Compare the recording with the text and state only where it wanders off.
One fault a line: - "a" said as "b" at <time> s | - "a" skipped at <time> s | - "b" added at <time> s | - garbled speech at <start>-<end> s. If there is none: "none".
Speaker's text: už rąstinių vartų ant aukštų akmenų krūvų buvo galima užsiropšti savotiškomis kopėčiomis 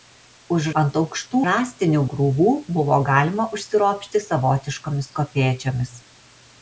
- "rąstinių vartų" skipped at 0.7 s
- "akmenų" said as "rąstinių" at 1.5 s